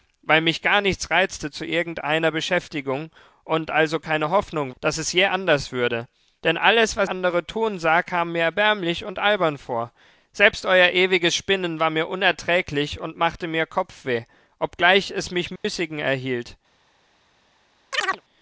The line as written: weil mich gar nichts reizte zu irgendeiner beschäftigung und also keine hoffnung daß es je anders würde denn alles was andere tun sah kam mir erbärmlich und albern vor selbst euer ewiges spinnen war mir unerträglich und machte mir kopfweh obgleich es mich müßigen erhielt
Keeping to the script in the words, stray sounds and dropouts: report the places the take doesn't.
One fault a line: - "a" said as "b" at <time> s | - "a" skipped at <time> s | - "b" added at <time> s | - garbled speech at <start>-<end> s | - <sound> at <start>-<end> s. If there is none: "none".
- dropout at 15.6-15.6 s
- chirp at 17.9-18.2 s